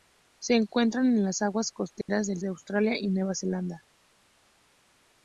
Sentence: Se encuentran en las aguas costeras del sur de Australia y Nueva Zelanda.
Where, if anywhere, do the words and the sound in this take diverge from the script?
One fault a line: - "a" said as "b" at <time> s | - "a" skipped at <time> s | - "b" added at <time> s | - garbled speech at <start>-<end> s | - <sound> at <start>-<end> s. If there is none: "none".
- dropout at 2.0-2.1 s
- "sur" skipped at 2.4 s